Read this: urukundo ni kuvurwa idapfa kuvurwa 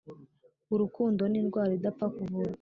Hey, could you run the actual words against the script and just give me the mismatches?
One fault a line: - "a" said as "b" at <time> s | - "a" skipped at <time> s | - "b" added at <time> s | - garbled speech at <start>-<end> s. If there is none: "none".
- "kuvurwa" said as "indwara" at 1.4 s